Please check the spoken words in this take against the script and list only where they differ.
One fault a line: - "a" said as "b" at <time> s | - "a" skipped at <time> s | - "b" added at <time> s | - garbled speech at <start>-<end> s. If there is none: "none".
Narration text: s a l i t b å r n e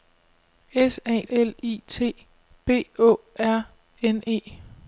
none